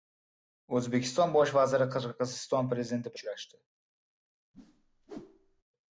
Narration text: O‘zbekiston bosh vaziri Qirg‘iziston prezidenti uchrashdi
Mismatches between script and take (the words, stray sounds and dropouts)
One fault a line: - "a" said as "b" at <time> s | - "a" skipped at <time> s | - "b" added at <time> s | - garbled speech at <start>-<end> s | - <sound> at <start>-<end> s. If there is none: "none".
- whoosh at 4.5-5.6 s